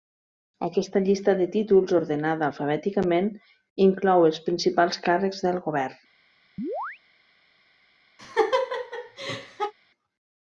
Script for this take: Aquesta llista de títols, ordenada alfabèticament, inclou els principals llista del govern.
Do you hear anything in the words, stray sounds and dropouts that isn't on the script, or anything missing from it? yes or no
yes